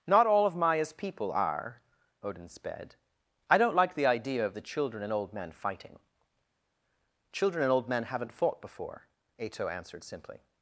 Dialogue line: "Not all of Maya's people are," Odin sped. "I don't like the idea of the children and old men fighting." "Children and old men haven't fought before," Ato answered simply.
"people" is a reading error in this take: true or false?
false